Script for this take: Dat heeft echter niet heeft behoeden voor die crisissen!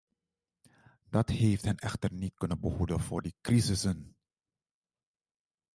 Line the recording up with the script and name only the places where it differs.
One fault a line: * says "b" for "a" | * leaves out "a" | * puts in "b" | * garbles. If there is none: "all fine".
* puts in "hen"
* says "kunnen" for "heeft"